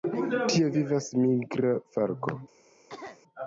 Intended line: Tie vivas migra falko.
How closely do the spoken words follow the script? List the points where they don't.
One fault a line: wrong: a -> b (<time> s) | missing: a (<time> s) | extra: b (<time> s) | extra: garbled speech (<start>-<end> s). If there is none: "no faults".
no faults